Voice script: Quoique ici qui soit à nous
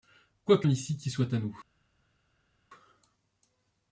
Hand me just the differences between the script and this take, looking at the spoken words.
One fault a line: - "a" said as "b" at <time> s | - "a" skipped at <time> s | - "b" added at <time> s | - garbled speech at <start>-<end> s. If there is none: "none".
none